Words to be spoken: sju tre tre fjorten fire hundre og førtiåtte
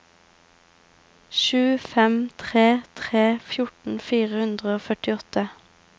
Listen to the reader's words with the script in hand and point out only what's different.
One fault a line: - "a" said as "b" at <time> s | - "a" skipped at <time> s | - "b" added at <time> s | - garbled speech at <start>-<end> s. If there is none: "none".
- "fem" added at 1.9 s